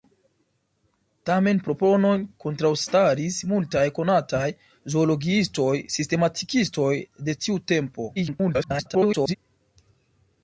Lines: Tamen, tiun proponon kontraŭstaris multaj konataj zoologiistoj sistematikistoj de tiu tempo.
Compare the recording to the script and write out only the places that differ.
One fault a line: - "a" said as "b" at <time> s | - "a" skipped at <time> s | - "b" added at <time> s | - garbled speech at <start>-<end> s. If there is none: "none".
- "tiun" skipped at 1.6 s
- garbled speech at 8.2-9.4 s